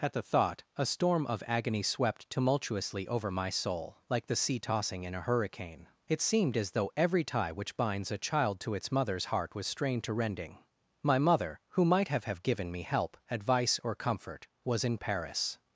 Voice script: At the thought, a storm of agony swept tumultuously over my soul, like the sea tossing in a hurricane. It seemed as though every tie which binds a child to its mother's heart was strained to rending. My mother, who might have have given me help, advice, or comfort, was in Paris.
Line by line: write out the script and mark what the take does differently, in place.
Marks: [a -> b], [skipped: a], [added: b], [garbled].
At the thought, a storm of agony swept tumultuously over my soul, like the sea tossing in a hurricane. It seemed as though every tie which binds a child to its mother's heart was strained to rending. My mother, who might have have given me help, advice, or comfort, was in Paris.